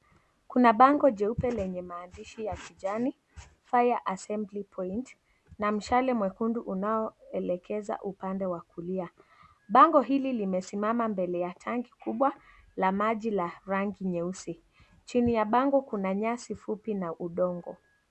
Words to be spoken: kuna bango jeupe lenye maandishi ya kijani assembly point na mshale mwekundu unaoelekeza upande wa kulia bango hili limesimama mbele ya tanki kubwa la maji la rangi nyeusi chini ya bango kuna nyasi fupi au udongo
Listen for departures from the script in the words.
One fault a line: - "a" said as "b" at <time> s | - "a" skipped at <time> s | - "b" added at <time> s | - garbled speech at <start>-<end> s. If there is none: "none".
- "fire" added at 3.6 s
- "au" said as "na" at 16.9 s